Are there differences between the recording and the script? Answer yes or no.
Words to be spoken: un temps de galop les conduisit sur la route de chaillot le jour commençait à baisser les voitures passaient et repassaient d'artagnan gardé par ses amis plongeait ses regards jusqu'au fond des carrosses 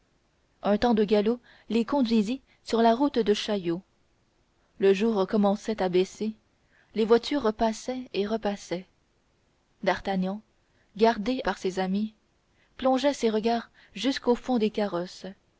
no